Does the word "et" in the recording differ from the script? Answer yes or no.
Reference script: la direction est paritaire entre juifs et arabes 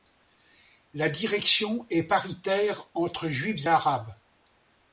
yes